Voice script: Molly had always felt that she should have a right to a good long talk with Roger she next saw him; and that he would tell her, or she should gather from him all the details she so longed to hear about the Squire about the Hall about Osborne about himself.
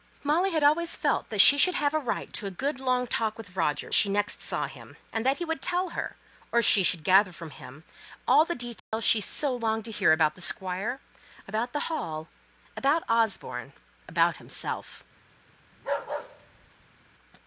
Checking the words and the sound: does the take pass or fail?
fail